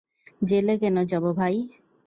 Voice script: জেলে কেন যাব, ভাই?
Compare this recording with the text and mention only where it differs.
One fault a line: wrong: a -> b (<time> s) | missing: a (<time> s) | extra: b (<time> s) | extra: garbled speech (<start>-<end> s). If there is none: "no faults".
no faults